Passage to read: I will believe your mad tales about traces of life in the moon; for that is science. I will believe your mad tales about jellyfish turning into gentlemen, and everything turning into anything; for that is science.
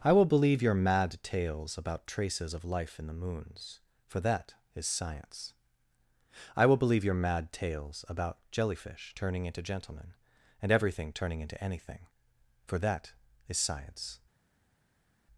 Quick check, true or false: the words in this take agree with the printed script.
false